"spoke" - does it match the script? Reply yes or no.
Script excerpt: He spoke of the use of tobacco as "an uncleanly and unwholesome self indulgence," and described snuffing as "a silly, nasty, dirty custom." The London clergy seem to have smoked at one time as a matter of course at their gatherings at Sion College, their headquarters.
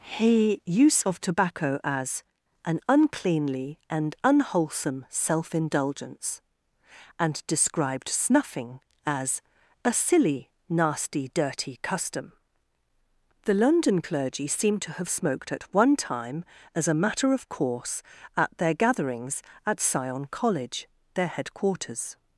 no